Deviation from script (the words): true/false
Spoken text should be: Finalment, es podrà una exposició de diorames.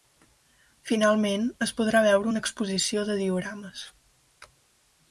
true